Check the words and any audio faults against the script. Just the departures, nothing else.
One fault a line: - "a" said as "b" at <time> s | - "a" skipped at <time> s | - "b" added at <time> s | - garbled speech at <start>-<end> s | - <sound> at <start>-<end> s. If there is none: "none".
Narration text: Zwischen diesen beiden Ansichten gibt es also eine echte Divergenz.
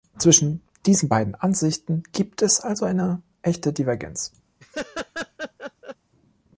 - laugh at 4.6-6.0 s